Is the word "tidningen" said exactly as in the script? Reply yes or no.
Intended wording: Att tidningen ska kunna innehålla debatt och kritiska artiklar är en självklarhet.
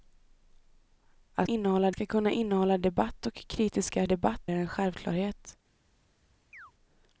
no